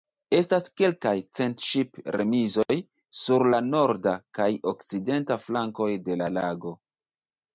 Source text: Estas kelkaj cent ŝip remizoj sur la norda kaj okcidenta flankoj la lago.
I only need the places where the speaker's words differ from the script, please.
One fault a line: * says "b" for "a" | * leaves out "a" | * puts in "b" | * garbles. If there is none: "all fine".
* puts in "de"